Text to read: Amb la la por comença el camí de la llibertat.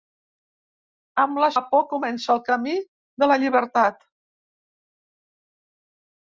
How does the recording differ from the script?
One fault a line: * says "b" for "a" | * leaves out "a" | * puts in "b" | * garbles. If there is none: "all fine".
all fine